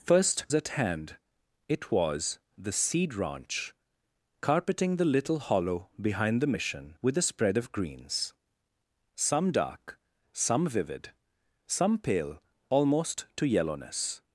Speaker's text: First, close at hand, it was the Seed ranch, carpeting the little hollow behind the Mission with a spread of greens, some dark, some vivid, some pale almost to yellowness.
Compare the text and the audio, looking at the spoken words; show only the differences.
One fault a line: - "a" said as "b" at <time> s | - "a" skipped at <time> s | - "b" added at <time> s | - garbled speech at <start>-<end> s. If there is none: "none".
- "close" skipped at 0.5 s